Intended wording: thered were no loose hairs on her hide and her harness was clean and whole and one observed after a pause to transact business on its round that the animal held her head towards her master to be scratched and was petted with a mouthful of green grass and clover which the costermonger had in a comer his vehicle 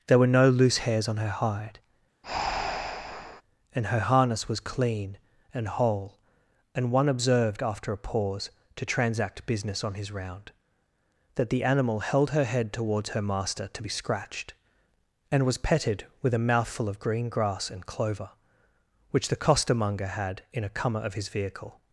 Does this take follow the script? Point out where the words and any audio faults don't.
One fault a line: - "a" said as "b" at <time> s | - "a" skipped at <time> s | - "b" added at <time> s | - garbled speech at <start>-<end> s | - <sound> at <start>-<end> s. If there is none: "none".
- "thered" said as "there" at 0.1 s
- breath at 2.2-3.4 s
- "its" said as "his" at 9.9 s
- "of" added at 21.0 s